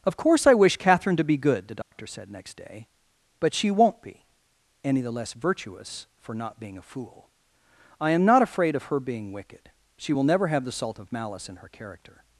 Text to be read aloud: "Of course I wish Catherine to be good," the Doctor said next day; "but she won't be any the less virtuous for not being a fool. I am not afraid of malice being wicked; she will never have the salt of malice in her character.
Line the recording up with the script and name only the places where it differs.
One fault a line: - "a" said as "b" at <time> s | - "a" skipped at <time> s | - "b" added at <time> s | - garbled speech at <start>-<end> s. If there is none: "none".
- "malice" said as "her" at 8.8 s